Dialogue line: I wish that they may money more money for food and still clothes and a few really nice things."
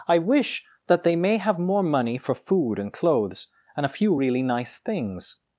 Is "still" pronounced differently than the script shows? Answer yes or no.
yes